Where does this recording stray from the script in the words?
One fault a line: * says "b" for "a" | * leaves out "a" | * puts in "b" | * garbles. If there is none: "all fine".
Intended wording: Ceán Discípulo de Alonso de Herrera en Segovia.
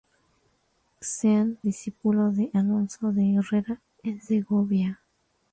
all fine